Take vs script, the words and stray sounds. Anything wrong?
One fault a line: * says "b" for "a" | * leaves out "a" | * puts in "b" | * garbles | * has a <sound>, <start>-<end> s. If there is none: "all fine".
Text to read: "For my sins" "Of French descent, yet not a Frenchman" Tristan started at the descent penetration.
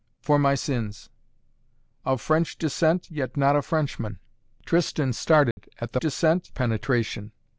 * has a dropout, 5.5-5.6 s